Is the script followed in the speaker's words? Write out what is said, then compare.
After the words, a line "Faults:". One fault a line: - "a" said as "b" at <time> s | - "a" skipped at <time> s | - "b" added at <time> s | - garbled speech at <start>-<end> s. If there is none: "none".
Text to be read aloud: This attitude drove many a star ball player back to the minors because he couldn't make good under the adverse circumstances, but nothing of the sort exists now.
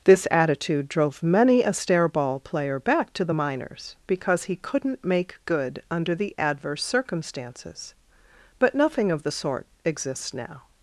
This attitude drove many a stair ball player back to the minors because he couldn't make good under the adverse circumstances, but nothing of the sort exists now.
Faults:
- "star" said as "stair" at 1.7 s